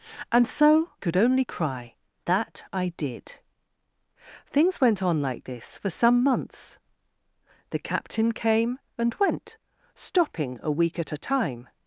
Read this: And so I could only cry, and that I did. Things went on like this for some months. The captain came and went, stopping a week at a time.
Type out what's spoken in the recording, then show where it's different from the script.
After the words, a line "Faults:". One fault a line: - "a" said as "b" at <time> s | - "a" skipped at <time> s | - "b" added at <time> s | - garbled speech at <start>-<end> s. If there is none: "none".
And so could only cry, that I did. Things went on like this for some months. The captain came and went, stopping a week at a time.
Faults:
- "I" skipped at 0.9 s
- "and" skipped at 1.9 s